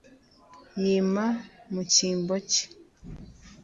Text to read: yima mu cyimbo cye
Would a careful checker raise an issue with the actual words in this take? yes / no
no